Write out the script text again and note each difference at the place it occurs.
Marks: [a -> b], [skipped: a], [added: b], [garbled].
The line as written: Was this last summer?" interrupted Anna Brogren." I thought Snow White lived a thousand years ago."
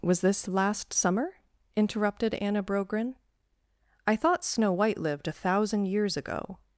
Was this last summer?" interrupted Anna Brogren." I thought Snow White lived a thousand years ago."